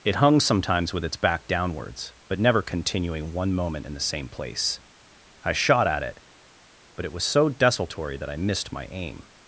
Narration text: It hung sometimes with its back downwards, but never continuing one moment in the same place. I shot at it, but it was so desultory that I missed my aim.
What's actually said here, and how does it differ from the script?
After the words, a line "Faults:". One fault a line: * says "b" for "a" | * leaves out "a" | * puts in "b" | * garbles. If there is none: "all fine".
It hung sometimes with its back downwards, but never continuing one moment in the same place. I shot at it, but it was so desultory that I missed my aim.
Faults:
all fine